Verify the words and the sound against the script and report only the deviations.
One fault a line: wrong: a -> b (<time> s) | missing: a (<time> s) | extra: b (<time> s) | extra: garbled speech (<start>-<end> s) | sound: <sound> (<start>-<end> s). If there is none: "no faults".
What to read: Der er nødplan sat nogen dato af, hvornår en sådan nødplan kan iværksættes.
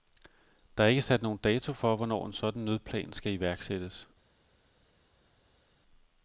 wrong: nødplan -> ikke (0.9 s)
wrong: af -> for (1.7 s)
wrong: kan -> skal (3.1 s)